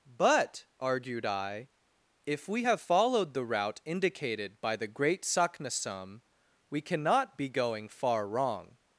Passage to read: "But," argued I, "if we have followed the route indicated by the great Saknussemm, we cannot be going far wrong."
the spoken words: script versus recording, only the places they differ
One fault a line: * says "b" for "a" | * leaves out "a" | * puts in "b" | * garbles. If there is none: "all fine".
all fine